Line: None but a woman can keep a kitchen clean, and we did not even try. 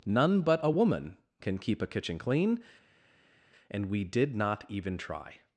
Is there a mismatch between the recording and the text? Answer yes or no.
no